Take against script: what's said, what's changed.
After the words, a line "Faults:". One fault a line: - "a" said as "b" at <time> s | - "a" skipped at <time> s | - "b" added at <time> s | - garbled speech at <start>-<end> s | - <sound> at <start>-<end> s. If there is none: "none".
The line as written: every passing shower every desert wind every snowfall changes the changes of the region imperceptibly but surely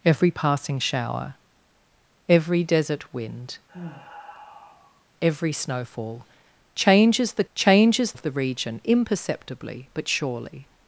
every passing shower every desert wind every snowfall changes the changes of the region imperceptibly but surely
Faults:
- sigh at 3.7-5.0 s